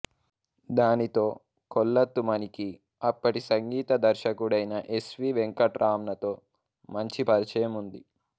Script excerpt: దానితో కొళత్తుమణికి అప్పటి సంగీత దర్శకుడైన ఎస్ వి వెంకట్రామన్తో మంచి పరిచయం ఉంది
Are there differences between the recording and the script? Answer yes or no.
no